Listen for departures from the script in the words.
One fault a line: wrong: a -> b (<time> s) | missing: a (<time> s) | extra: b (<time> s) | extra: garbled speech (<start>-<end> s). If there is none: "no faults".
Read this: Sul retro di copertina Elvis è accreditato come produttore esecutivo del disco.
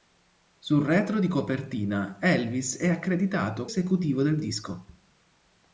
missing: come produttore (3.7 s)